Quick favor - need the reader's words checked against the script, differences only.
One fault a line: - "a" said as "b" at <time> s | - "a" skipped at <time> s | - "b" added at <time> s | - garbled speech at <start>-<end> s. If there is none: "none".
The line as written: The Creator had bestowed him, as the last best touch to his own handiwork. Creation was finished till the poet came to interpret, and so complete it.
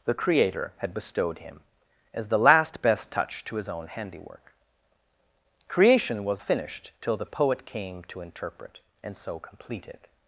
none